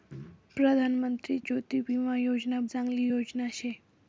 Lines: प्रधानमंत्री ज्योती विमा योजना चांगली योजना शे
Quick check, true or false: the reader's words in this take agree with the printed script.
true